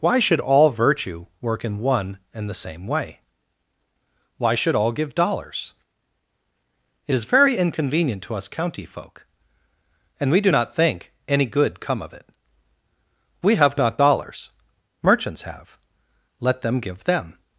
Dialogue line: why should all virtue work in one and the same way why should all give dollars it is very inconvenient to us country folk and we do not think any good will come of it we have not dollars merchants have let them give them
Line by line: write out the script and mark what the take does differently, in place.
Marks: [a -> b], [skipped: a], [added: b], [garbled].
why should all virtue work in one and the same way why should all give dollars it is very inconvenient to us [country -> county] folk and we do not think any good [skipped: will] come of it we have not dollars merchants have let them give them